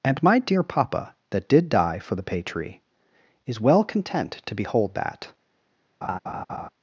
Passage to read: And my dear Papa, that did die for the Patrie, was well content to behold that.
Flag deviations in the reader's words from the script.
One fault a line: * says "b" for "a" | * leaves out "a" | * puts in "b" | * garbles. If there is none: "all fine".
* says "is" for "was"